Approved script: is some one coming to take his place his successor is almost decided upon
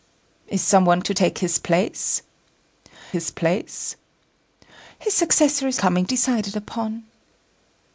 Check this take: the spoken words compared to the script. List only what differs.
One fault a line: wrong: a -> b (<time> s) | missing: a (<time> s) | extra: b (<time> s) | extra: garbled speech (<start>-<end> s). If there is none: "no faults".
missing: coming (1.0 s)
extra: place his (3.3 s)
wrong: almost -> coming (5.8 s)